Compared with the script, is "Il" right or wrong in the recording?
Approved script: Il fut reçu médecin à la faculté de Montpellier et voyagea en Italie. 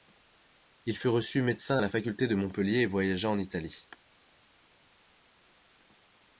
right